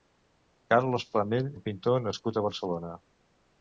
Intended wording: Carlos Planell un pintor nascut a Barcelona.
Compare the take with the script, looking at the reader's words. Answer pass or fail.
pass